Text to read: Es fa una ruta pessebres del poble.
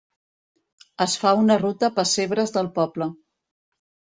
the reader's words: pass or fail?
pass